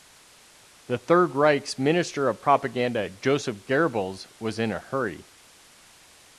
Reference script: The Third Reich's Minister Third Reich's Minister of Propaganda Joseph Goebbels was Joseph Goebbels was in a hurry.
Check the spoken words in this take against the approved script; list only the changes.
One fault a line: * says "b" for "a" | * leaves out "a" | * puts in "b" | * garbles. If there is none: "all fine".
* leaves out "Third Reich's Minister"
* leaves out "Joseph Goebbels was"